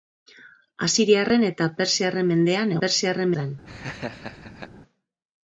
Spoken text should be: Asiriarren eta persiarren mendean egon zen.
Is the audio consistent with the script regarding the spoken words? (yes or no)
no